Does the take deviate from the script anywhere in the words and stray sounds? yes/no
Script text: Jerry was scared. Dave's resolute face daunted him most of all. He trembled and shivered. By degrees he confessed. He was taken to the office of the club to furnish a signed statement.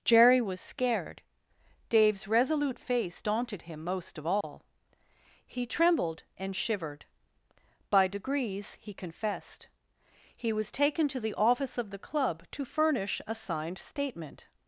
yes